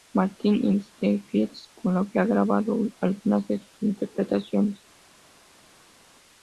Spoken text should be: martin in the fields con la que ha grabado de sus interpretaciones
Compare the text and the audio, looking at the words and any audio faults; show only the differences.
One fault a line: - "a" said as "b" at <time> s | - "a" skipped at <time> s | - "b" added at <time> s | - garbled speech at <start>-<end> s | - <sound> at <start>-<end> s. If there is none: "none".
- "algunas" added at 3.0 s